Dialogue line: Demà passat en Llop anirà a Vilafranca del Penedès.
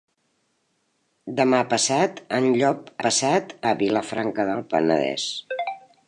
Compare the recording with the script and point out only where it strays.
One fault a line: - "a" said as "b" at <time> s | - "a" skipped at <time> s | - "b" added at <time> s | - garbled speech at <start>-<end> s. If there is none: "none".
- "anirà" said as "passat" at 3.1 s